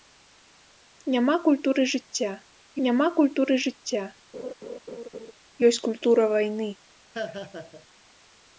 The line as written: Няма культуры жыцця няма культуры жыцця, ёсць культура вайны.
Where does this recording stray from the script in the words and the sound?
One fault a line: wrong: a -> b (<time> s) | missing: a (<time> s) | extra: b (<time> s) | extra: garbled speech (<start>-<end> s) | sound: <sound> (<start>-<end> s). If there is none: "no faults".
sound: laugh (4.3-5.3 s)
sound: laugh (7.1-7.9 s)